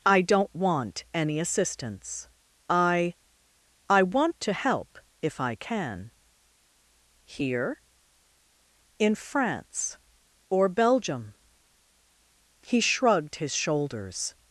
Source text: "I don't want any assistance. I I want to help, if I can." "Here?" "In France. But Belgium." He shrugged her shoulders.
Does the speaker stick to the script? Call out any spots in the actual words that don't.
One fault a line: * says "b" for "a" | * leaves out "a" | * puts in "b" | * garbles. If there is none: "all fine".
* says "Or" for "But"
* says "his" for "her"